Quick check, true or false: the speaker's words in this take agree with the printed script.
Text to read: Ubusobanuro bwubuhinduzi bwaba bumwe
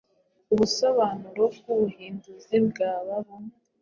true